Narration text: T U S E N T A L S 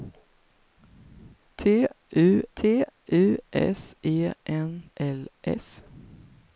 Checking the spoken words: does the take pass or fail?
fail